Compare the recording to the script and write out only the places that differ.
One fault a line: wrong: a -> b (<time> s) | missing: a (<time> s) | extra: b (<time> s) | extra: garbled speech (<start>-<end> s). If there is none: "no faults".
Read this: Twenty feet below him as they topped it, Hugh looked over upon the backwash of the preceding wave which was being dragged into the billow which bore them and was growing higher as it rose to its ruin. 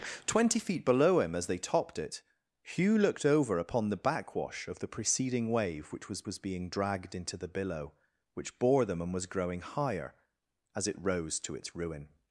extra: was (6.3 s)